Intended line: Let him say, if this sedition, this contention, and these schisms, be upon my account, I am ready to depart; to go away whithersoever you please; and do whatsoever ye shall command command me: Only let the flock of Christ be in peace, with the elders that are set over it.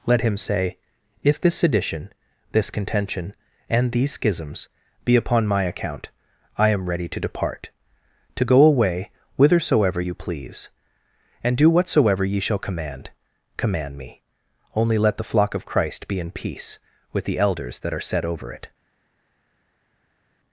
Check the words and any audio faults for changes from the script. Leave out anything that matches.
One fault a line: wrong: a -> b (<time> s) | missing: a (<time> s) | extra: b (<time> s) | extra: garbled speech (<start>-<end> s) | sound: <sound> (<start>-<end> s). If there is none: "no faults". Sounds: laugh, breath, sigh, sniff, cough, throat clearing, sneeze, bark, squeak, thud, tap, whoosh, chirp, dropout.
no faults